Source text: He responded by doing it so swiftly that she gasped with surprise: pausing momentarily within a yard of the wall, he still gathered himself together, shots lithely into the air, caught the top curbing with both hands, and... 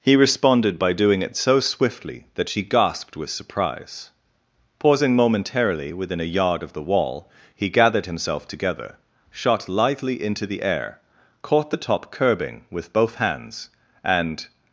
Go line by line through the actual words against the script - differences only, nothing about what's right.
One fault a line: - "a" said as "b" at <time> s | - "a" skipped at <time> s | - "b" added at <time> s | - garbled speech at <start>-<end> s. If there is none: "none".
- "still" skipped at 7.7 s
- "shots" said as "shot" at 9.3 s